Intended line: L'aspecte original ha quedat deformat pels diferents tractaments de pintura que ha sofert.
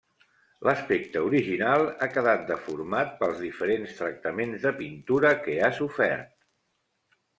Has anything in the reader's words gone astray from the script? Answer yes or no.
no